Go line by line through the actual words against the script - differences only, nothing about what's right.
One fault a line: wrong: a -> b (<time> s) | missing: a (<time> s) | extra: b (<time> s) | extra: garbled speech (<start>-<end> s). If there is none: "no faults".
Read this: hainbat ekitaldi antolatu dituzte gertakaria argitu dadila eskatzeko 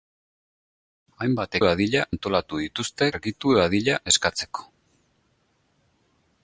wrong: ekitaldi -> dadila (1.7 s)
missing: gertakaria (3.1 s)